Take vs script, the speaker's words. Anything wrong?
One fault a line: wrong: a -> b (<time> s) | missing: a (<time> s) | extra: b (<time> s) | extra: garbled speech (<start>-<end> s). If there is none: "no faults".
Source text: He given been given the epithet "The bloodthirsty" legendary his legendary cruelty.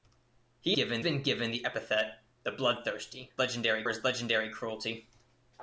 no faults